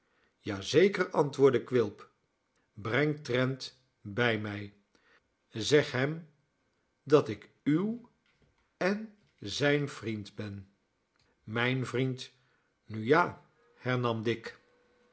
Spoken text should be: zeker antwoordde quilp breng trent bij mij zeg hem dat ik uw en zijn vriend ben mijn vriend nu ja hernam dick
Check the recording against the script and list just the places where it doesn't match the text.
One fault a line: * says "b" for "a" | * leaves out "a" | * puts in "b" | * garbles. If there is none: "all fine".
all fine